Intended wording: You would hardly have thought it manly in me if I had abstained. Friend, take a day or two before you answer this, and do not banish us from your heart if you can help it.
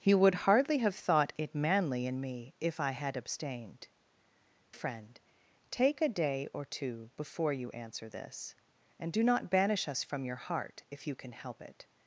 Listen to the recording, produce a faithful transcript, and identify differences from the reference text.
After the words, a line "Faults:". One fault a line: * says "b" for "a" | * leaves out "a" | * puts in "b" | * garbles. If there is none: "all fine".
You would hardly have thought it manly in me if I had abstained. Friend, take a day or two before you answer this, and do not banish us from your heart if you can help it.
Faults:
all fine